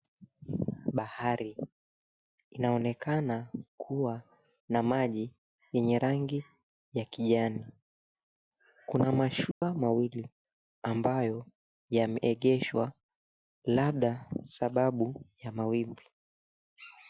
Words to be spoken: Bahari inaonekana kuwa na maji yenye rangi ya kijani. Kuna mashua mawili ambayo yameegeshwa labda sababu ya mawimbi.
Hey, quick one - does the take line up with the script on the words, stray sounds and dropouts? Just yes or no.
no